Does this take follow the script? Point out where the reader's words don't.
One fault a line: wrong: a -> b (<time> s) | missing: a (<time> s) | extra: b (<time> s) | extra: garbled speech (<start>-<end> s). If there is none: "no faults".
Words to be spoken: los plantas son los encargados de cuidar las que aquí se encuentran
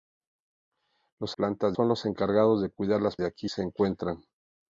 no faults